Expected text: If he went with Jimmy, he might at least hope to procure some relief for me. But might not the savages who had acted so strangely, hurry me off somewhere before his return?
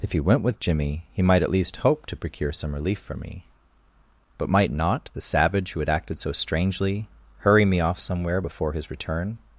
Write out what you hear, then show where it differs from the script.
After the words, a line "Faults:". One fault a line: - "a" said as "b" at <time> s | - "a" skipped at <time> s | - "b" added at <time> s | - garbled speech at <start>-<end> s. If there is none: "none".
If he went with Jimmy, he might at least hope to procure some relief for me. But might not the savage who had acted so strangely, hurry me off somewhere before his return?
Faults:
- "savages" said as "savage" at 5.2 s